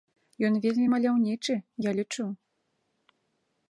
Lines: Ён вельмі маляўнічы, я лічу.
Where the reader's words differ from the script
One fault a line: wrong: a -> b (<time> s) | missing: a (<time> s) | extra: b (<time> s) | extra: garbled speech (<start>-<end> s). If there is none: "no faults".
no faults